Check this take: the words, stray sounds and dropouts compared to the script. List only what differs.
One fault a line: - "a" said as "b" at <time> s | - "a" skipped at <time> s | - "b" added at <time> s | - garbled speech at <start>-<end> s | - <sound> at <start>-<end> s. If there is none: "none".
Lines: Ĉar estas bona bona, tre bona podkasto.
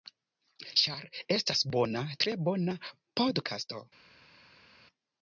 - "bona" skipped at 2.0 s